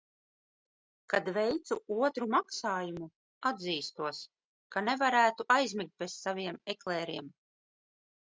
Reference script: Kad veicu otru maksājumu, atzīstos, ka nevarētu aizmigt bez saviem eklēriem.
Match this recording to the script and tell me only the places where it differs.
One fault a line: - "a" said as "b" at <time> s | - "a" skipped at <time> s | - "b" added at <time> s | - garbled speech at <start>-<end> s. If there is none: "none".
none